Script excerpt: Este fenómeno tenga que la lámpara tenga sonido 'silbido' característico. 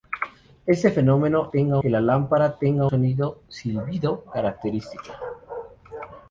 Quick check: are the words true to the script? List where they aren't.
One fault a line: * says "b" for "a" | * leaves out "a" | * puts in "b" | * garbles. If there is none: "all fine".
all fine